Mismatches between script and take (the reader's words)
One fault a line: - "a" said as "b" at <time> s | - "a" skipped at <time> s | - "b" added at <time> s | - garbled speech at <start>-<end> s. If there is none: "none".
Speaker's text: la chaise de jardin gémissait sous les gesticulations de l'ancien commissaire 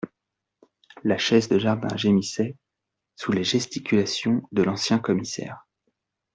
none